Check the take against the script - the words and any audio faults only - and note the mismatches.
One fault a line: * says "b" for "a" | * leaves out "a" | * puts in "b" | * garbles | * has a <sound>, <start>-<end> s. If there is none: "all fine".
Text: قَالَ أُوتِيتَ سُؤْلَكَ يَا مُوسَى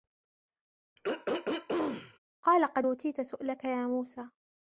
* has a throat clearing, 1.0-2.2 s
* puts in "قَدْ"